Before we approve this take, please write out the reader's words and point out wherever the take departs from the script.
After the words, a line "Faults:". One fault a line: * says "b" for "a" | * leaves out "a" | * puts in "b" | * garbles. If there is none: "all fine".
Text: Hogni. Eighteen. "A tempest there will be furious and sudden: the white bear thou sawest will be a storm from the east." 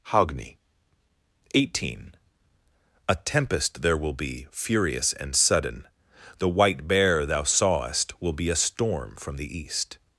Hogni. Eighteen. "A tempest there will be furious and sudden: the white bear thou sawest will be a storm from the east."
Faults:
all fine